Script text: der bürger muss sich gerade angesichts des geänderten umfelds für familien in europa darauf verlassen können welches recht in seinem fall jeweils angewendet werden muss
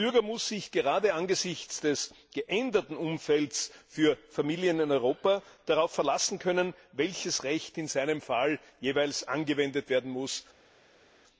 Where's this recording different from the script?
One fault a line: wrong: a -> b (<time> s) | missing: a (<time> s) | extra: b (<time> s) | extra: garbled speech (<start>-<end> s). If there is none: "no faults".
no faults